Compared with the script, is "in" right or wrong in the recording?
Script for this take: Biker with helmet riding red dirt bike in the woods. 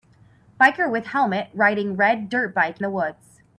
wrong